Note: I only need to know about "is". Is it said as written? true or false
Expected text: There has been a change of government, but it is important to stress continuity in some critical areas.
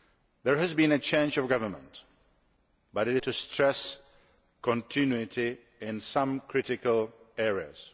false